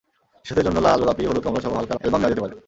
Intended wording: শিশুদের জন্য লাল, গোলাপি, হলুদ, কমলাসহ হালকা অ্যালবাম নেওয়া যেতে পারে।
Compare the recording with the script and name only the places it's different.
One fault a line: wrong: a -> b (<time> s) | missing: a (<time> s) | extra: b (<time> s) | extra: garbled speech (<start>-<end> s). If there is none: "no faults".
no faults